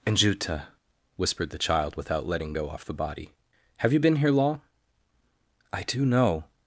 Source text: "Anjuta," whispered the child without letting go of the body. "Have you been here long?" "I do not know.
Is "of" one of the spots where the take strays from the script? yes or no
yes